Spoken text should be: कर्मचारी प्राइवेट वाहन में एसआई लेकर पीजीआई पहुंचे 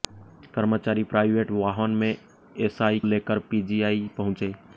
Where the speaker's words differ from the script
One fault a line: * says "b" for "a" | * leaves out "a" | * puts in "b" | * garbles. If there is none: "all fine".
all fine